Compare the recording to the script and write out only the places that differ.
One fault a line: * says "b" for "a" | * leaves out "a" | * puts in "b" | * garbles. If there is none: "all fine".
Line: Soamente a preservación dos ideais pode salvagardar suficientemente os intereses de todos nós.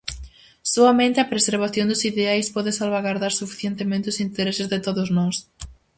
all fine